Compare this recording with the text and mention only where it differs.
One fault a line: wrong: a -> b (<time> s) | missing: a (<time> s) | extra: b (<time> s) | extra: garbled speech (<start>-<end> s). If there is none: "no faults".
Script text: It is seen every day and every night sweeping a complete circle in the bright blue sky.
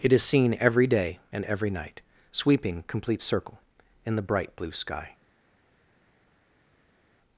missing: a (2.8 s)